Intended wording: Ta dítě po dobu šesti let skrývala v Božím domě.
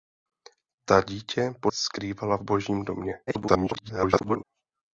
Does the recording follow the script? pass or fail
fail